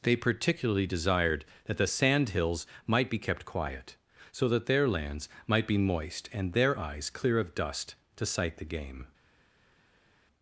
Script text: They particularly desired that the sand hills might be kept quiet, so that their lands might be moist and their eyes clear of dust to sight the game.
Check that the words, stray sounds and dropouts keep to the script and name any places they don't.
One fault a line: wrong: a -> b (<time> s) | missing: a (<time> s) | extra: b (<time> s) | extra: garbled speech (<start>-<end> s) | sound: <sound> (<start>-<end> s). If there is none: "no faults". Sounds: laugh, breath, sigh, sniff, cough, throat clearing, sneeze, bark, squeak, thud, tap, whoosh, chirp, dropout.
no faults